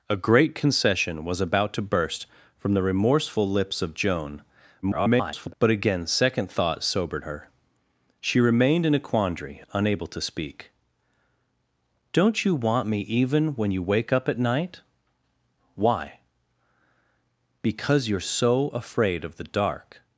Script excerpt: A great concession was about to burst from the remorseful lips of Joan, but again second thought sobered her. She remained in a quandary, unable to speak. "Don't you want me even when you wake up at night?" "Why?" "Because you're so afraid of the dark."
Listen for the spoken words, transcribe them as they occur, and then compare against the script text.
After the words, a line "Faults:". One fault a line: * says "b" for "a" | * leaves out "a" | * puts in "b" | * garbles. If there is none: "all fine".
A great concession was about to burst from the remorseful lips of Joan, [garbled] but again second thought sobered her. She remained in a quandary, unable to speak. "Don't you want me even when you wake up at night?" "Why?" "Because you're so afraid of the dark."
Faults:
* garbles